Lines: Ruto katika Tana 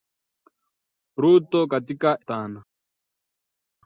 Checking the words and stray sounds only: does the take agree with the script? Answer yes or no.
yes